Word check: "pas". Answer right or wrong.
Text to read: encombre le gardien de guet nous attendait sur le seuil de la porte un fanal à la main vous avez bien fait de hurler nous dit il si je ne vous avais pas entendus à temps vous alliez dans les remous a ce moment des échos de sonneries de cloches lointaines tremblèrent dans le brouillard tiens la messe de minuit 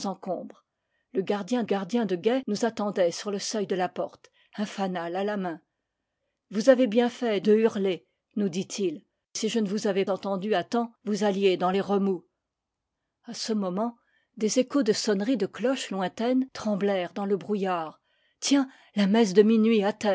wrong